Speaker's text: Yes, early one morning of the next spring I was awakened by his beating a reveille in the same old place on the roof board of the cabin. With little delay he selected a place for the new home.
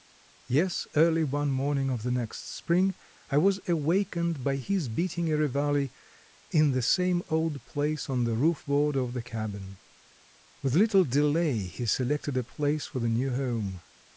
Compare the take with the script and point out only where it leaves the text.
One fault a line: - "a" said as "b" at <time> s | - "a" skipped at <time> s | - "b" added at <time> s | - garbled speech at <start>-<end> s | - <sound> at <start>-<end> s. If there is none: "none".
none